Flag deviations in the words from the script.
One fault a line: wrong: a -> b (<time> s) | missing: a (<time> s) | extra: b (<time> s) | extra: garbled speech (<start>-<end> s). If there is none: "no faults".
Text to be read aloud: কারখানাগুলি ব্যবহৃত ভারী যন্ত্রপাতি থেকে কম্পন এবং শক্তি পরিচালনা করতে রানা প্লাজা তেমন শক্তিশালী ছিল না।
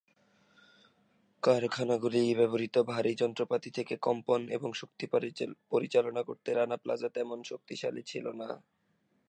no faults